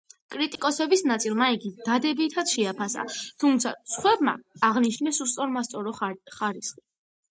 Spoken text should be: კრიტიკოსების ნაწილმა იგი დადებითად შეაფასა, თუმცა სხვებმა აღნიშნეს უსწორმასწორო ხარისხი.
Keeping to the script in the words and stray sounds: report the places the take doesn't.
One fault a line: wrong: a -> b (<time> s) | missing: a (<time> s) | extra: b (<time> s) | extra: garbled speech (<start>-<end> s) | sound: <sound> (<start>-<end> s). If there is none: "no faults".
sound: dropout (0.6-0.6 s)